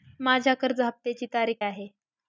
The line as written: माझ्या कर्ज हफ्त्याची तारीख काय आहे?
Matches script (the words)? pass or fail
fail